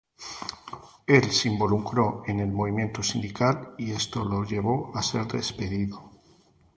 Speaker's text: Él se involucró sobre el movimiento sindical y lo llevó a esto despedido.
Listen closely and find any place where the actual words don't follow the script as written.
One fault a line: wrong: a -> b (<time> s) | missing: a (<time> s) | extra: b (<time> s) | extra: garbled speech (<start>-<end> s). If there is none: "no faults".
wrong: sobre -> en (2.2 s)
extra: esto (3.9 s)
wrong: esto -> ser (5.0 s)